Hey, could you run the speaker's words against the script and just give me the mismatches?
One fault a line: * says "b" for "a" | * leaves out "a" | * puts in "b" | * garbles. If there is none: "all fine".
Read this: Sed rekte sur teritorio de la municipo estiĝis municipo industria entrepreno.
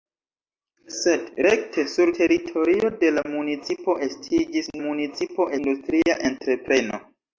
all fine